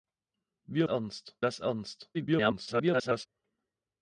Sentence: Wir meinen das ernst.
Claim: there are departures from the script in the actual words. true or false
true